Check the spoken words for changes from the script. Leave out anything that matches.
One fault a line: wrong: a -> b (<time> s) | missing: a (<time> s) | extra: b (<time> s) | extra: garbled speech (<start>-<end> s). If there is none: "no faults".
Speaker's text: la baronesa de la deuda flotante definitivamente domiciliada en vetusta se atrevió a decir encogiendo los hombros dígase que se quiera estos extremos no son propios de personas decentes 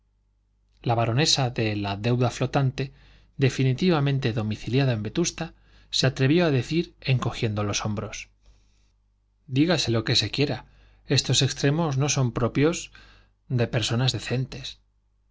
extra: lo (9.9 s)